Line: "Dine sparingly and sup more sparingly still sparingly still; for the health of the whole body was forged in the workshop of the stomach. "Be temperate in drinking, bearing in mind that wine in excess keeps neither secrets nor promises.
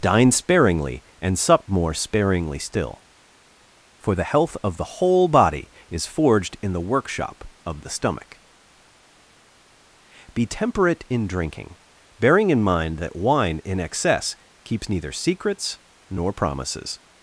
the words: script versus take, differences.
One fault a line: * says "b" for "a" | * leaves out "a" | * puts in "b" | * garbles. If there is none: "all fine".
* leaves out "sparingly still"
* says "is" for "was"